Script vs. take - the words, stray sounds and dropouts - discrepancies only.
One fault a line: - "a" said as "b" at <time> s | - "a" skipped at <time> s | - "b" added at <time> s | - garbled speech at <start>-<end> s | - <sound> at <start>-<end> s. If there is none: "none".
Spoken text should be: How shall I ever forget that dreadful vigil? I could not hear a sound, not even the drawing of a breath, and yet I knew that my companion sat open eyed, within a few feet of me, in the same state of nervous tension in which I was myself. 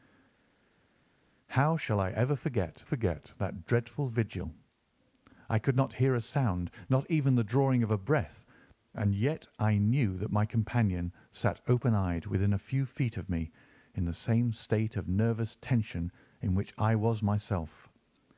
- "forget" added at 2.8 s